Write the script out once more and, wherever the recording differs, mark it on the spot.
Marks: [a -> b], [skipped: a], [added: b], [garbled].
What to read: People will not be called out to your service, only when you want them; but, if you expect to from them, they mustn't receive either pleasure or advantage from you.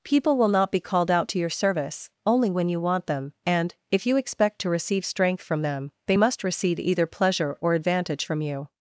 People will not be called out to your service, only when you want them; [but, -> and] if you expect to [added: receive strength] from them, they [mustn't -> must] receive either pleasure or advantage from you.